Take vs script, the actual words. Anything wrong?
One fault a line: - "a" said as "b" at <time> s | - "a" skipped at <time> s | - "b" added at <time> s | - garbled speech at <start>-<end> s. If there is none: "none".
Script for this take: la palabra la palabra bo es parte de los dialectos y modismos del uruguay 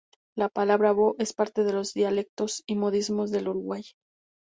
- "la palabra" skipped at 0.9 s